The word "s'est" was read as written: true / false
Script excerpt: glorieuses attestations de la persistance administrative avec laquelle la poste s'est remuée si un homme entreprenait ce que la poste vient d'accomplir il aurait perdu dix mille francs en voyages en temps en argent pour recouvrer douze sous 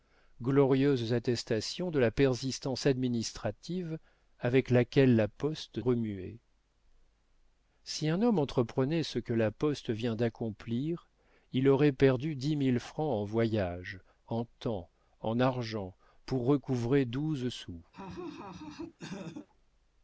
false